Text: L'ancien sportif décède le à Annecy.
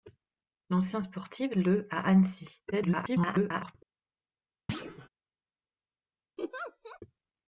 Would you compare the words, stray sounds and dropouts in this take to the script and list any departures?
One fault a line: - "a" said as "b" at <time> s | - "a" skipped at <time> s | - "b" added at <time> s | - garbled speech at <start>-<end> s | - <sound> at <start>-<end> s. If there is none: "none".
- "décède" skipped at 1.6 s
- garbled speech at 2.7-3.7 s
- thud at 4.7-5.1 s
- laugh at 6.4-7.0 s